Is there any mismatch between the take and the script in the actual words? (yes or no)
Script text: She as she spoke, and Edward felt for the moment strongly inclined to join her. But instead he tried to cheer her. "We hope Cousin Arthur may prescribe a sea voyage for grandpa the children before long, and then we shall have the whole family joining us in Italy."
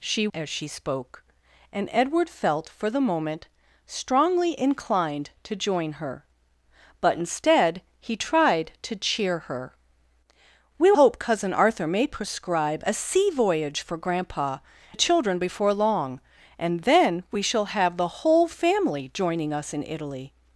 no